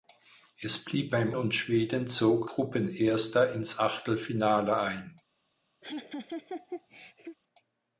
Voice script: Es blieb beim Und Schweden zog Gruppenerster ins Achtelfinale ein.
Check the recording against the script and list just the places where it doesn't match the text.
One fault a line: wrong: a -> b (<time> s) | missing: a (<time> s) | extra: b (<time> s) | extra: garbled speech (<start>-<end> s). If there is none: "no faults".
no faults